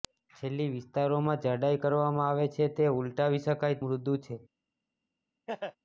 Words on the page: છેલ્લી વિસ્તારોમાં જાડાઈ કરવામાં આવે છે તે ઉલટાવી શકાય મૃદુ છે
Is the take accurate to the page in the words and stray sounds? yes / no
no